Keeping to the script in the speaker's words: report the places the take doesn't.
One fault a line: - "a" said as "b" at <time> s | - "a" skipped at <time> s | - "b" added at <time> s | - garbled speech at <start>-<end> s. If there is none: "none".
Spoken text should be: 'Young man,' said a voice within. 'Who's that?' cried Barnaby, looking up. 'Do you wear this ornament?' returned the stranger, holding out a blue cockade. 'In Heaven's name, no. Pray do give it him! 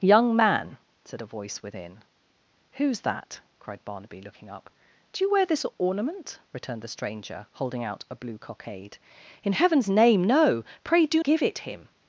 none